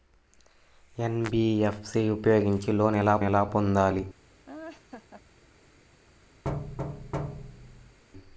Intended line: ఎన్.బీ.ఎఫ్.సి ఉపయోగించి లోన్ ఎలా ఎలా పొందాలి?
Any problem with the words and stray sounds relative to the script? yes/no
yes